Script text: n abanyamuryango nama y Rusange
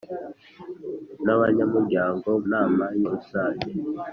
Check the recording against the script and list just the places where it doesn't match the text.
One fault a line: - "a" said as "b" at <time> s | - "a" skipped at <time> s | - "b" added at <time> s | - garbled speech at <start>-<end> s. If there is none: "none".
none